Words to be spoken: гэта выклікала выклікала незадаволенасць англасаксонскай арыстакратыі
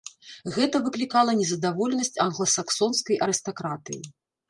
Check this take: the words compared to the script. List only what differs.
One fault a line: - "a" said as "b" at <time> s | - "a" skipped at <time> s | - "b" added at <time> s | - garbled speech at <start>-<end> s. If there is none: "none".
- "выклікала" skipped at 1.4 s